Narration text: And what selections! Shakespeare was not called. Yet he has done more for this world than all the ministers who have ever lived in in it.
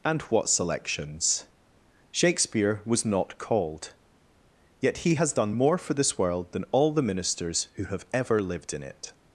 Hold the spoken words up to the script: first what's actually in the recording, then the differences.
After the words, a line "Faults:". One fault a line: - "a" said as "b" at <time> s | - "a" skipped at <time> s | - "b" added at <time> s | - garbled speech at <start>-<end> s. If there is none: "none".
And what selections! Shakespeare was not called. Yet he has done more for this world than all the ministers who have ever lived in it.
Faults:
- "in" skipped at 8.8 s